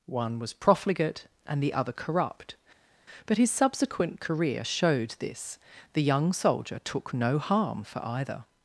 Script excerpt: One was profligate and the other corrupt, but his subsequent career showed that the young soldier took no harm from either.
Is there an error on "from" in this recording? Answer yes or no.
yes